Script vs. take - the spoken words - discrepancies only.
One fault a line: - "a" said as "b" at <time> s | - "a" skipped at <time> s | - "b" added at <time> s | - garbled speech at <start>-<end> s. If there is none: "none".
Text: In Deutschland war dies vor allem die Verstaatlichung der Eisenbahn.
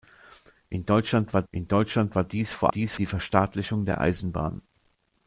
- "in Deutschland war" added at 1.5 s
- "allem" said as "dies" at 2.7 s